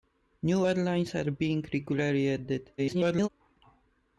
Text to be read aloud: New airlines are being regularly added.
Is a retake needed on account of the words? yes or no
yes